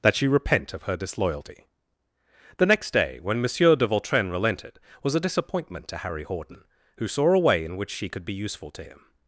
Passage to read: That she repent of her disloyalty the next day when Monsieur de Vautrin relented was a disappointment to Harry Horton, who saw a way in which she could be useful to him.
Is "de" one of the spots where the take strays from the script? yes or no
no